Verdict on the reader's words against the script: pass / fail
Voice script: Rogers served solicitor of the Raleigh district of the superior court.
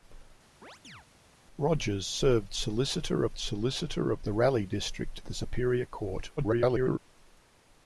fail